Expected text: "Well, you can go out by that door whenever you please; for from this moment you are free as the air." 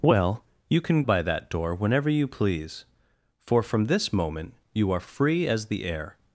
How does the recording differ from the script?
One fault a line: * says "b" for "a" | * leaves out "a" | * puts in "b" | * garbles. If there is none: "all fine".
* leaves out "go out"